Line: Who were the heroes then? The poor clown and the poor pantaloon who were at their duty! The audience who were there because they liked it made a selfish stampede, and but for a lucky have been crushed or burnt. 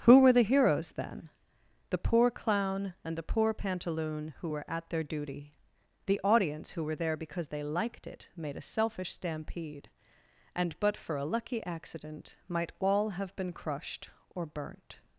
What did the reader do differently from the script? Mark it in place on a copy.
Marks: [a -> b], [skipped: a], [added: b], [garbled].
Who were the heroes then? The poor clown and the poor pantaloon who were at their duty! The audience who were there because they liked it made a selfish stampede, and but for a lucky [added: accident might all] have been crushed or burnt.